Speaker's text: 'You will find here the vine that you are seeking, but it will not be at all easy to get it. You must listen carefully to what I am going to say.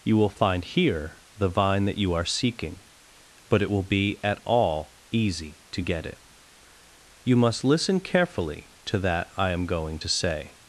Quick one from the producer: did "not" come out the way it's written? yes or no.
no